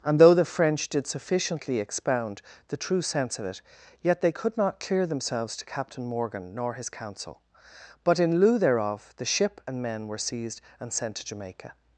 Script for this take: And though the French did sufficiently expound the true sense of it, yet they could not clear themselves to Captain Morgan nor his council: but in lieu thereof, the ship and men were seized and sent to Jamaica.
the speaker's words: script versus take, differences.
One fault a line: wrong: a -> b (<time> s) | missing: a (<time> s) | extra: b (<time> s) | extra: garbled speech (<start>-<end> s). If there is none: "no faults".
no faults